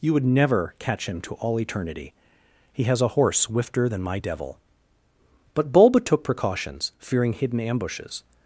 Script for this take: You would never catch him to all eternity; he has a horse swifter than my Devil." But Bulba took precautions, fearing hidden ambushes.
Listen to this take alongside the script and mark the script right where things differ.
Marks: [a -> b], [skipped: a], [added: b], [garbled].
You would never catch him to all eternity; he has a horse swifter than my Devil." But Bulba took precautions, fearing hidden ambushes.